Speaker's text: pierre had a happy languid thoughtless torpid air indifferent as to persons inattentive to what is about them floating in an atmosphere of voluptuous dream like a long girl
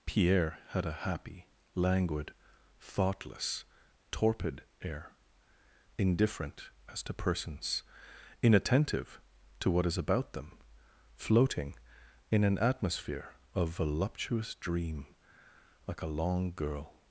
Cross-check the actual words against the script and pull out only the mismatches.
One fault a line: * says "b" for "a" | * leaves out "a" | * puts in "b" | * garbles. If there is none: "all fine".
all fine